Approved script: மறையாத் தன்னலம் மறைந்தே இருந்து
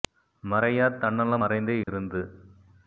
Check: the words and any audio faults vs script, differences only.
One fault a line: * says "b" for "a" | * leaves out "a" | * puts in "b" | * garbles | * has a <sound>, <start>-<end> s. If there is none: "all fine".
* has a dropout, 1.8-1.9 s